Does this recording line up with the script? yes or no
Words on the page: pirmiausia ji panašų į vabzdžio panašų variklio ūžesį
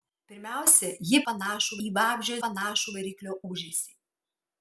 yes